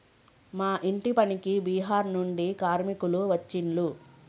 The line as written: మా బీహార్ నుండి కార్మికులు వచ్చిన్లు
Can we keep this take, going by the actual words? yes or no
no